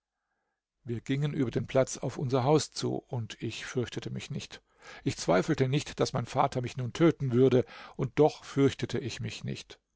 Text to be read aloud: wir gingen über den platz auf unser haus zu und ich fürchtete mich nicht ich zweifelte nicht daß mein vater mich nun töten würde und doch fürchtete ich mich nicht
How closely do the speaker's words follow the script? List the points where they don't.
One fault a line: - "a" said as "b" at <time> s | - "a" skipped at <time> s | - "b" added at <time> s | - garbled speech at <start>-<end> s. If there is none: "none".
none